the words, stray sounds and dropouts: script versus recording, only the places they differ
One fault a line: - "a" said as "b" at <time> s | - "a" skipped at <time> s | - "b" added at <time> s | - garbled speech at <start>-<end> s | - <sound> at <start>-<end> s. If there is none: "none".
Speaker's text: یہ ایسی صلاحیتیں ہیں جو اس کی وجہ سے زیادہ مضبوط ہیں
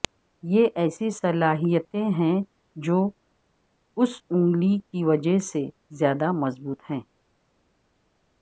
- "انگلی" added at 4.3 s